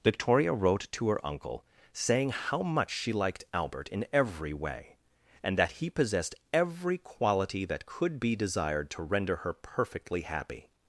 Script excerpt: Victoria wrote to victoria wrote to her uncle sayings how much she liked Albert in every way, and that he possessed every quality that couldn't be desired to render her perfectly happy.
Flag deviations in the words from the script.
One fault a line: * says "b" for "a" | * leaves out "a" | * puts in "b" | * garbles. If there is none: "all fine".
* leaves out "victoria wrote to"
* says "saying" for "sayings"
* says "could" for "couldn't"